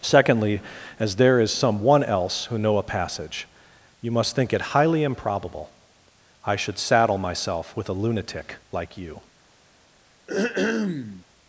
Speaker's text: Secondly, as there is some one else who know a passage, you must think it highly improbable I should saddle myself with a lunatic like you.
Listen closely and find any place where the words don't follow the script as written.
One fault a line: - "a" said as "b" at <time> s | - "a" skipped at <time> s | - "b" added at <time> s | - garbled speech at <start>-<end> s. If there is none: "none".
none